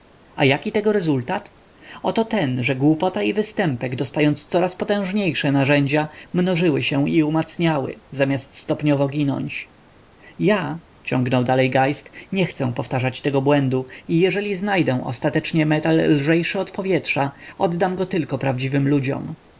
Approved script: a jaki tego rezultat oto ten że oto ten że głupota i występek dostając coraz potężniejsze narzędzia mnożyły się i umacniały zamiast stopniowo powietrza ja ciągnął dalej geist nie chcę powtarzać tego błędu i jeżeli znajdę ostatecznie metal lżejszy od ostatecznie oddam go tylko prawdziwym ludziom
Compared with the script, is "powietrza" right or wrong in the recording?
wrong